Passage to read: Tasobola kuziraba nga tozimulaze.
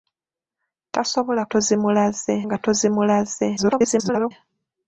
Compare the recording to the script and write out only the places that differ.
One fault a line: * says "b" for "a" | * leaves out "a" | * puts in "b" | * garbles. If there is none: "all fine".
* says "tozimulaze" for "kuziraba"
* garbles